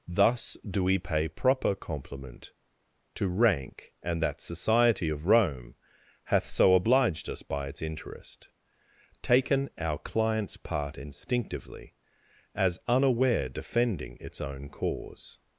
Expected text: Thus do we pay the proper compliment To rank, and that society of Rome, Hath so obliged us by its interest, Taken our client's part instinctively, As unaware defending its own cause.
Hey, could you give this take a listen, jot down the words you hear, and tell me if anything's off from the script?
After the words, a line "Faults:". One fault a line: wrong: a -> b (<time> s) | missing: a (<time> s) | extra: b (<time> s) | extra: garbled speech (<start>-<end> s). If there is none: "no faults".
Thus do we pay proper compliment To rank, and that society of Rome, Hath so obliged us by its interest, Taken our client's part instinctively, As unaware defending its own cause.
Faults:
missing: the (1.3 s)